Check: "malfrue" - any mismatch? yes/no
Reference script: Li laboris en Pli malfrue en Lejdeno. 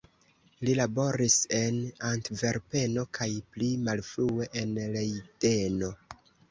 no